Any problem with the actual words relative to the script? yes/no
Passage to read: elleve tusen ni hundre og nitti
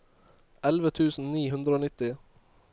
no